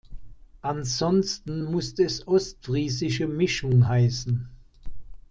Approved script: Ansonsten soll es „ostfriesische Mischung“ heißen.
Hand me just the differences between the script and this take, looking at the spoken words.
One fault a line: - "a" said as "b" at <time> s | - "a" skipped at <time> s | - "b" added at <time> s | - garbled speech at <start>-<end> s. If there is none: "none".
- "soll" said as "muss" at 1.6 s